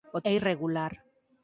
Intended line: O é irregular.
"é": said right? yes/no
yes